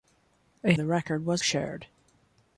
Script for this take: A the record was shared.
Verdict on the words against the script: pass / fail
pass